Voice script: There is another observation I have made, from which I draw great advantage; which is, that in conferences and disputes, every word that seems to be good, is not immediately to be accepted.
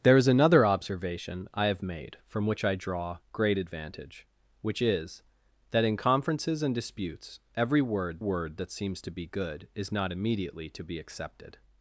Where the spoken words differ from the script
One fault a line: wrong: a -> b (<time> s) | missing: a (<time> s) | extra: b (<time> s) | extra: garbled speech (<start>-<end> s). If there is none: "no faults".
extra: word (8.2 s)